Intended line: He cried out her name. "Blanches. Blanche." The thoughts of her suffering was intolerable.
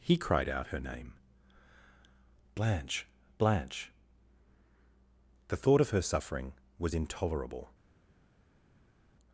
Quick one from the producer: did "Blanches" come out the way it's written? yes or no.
no